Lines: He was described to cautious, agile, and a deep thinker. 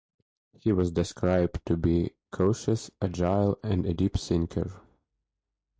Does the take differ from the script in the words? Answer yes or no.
yes